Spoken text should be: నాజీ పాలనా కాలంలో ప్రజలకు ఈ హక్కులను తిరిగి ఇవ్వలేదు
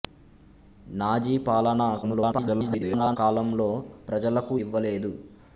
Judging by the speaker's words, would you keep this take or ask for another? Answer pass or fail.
fail